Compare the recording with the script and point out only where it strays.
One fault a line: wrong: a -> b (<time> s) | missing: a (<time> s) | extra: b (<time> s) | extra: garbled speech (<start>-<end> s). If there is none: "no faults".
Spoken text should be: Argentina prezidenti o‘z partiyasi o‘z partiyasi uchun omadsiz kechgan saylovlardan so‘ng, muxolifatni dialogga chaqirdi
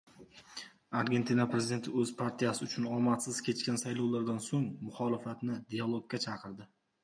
missing: o‘z partiyasi (2.6 s)